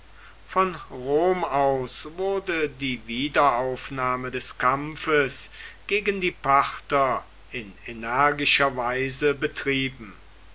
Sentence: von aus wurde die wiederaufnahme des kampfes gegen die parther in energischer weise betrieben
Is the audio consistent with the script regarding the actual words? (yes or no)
no